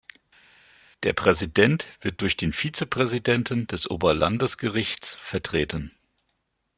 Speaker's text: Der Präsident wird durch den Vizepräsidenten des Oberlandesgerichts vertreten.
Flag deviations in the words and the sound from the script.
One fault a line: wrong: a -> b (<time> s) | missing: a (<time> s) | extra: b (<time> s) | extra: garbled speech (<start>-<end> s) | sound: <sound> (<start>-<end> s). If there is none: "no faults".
no faults